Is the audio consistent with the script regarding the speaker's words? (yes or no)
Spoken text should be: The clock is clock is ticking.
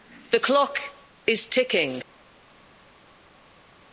no